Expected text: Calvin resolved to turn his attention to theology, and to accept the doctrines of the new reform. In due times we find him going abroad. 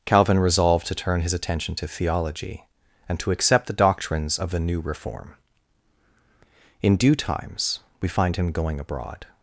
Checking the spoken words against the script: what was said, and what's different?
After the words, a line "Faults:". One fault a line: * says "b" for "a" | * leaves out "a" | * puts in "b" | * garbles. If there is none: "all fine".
Calvin resolved to turn his attention to theology, and to accept the doctrines of the new reform. In due times we find him going abroad.
Faults:
all fine